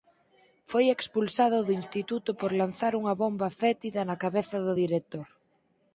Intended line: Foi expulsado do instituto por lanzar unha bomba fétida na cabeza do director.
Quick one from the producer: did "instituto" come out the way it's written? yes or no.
yes